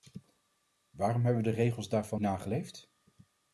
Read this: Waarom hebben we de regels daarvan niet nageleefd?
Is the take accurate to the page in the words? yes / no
no